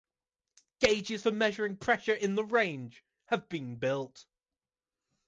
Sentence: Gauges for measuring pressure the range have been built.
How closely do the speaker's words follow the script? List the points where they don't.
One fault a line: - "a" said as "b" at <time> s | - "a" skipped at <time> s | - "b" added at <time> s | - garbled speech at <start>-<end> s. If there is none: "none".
- "in" added at 2.1 s